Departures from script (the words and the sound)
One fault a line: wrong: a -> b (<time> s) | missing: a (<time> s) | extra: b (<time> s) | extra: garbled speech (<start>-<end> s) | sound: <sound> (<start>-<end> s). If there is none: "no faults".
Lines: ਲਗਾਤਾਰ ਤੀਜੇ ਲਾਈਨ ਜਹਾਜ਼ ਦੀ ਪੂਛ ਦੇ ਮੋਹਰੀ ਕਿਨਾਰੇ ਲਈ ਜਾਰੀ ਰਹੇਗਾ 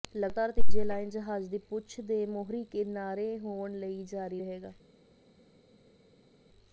extra: ਹੋਣ (3.4 s)